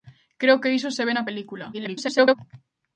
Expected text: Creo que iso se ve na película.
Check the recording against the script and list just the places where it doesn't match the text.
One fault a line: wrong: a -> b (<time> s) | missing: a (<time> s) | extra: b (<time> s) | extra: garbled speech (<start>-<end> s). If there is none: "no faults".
extra: garbled speech (1.7-2.4 s)